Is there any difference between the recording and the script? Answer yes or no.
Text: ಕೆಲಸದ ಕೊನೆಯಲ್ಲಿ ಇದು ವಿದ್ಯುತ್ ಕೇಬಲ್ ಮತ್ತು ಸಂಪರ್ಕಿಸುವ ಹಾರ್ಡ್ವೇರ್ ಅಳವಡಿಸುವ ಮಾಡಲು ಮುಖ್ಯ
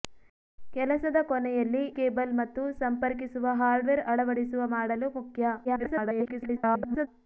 yes